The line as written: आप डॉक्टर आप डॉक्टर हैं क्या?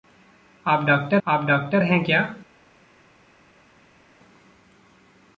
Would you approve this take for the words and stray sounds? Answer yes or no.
yes